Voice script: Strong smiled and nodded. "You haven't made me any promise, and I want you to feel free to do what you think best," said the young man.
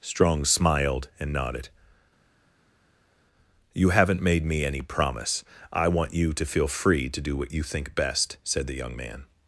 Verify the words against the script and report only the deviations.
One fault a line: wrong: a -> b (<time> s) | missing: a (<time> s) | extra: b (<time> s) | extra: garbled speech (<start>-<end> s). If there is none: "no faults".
missing: and (5.4 s)